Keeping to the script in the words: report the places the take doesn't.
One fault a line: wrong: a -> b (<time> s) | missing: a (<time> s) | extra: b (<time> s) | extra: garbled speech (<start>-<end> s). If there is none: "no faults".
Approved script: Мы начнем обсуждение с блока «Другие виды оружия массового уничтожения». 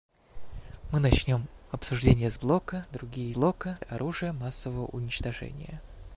wrong: виды -> блока (3.3 s)